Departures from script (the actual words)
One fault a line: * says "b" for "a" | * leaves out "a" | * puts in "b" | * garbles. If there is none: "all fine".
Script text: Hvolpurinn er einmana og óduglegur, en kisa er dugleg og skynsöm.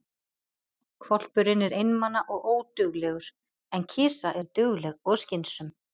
all fine